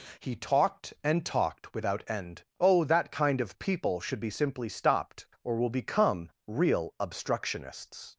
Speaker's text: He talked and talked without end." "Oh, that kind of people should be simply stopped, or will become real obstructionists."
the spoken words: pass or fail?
pass